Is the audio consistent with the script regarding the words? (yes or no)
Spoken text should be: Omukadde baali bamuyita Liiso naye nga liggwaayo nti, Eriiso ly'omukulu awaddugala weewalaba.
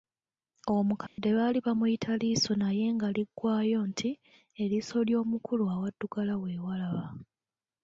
yes